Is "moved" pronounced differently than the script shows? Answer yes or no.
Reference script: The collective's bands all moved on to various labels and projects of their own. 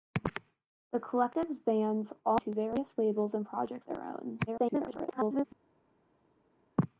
yes